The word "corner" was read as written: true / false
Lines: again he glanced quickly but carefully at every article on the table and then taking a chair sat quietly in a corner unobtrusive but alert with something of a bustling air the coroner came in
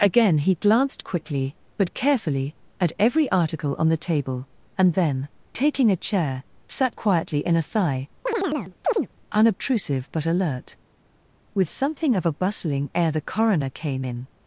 false